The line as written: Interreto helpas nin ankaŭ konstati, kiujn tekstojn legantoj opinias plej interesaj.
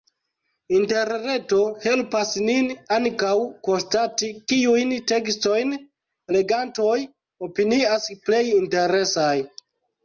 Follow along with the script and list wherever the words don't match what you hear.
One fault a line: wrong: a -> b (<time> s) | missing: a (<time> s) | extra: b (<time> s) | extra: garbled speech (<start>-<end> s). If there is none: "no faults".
no faults